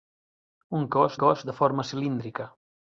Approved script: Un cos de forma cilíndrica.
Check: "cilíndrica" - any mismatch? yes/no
no